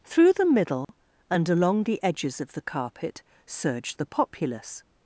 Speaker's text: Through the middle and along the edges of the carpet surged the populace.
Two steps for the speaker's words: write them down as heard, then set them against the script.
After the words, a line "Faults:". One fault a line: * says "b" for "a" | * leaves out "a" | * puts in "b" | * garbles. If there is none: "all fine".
Through the middle and along the edges of the carpet surged the populace.
Faults:
all fine